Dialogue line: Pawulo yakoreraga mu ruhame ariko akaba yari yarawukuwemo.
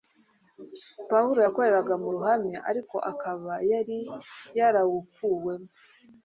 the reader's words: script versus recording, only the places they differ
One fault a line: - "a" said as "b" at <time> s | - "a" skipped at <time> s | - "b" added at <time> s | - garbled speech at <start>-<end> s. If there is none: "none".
none